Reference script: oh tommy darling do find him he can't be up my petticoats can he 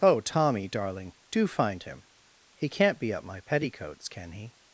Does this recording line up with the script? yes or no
yes